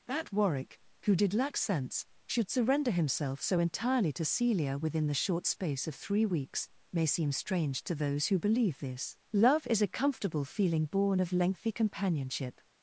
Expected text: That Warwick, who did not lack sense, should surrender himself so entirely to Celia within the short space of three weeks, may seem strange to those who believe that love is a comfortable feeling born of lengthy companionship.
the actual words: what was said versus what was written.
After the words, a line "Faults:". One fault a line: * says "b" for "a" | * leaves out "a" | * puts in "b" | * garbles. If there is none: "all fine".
That Warwick, who did lack sense, should surrender himself so entirely to Celia within the short space of three weeks, may seem strange to those who believe this love is a comfortable feeling born of lengthy companionship.
Faults:
* leaves out "not"
* says "this" for "that"